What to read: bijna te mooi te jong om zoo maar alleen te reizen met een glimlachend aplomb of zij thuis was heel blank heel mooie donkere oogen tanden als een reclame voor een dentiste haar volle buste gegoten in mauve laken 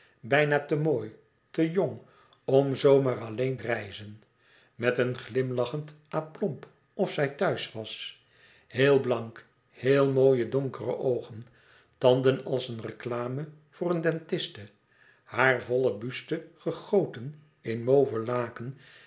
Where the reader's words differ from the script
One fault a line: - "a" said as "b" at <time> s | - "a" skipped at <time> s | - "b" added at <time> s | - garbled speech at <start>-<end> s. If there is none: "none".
- "te" skipped at 3.6 s